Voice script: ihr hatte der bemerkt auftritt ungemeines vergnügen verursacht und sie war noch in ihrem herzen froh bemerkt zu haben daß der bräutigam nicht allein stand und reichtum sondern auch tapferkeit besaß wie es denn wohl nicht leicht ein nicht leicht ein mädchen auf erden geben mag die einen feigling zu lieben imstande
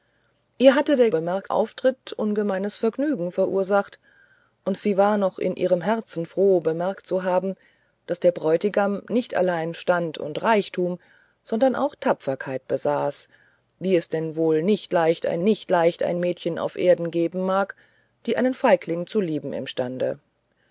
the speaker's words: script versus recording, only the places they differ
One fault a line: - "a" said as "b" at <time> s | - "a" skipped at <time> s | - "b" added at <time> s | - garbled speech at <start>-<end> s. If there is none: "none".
none